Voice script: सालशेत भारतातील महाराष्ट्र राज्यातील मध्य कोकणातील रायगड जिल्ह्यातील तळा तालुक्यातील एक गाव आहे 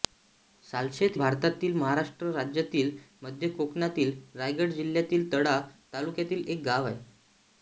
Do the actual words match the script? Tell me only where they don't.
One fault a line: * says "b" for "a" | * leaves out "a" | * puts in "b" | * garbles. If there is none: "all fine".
all fine